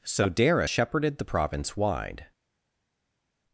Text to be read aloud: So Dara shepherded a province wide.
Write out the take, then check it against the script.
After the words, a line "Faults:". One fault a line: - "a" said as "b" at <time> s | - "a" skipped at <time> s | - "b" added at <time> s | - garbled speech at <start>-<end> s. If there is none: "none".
So Dara shepherded the province wide.
Faults:
- "a" said as "the" at 1.2 s